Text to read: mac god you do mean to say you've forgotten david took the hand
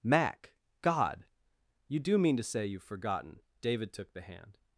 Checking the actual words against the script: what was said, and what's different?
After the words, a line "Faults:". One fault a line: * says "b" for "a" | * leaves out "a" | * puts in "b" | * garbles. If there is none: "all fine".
mac god you do mean to say you've forgotten david took the hand
Faults:
all fine